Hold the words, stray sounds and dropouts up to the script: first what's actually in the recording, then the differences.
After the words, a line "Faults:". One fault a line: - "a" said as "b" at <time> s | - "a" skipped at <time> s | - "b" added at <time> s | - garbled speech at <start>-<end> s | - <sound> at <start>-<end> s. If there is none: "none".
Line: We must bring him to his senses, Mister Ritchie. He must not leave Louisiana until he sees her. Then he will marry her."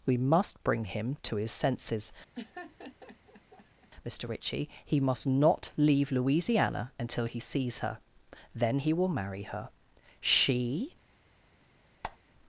We must bring him to his senses, Mister Ritchie. He must not leave Louisiana until he sees her. Then he will marry her." She
Faults:
- laugh at 2.3-3.9 s
- "She" added at 10.2 s
- squeak at 12.0-12.2 s